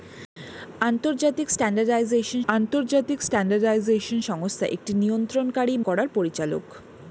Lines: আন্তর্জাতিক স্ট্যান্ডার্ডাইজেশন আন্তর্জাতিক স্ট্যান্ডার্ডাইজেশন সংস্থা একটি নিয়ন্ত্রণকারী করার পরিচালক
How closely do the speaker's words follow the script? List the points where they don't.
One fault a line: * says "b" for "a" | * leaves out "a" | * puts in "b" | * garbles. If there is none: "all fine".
all fine